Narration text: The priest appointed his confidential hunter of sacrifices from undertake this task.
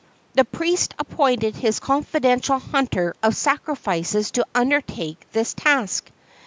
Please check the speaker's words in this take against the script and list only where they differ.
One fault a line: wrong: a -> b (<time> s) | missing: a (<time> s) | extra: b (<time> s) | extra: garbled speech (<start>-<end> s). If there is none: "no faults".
wrong: from -> to (4.3 s)